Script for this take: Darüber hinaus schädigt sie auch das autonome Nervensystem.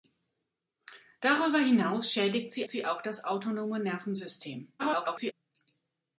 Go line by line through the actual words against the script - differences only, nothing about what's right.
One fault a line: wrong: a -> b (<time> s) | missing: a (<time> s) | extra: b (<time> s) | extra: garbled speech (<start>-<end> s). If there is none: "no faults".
extra: sie (2.7 s)
extra: garbled speech (4.8-5.3 s)